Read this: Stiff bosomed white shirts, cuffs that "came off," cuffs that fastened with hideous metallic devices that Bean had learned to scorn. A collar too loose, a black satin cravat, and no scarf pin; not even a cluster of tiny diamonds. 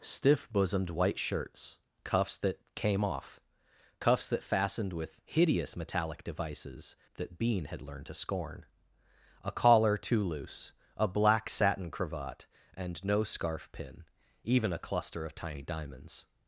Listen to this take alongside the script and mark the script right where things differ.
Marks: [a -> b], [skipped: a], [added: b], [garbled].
Stiff bosomed white shirts, cuffs that "came off," cuffs that fastened with hideous metallic devices that Bean had learned to scorn. A collar too loose, a black satin cravat, and no scarf pin; [skipped: not] even a cluster of tiny diamonds.